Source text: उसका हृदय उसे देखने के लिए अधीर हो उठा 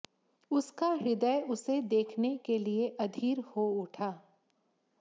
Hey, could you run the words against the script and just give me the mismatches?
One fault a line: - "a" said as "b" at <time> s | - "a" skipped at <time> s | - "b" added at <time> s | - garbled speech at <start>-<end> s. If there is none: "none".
none